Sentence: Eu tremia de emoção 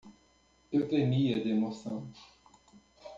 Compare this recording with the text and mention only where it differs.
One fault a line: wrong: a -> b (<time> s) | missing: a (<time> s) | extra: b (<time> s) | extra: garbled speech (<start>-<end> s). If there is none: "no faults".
no faults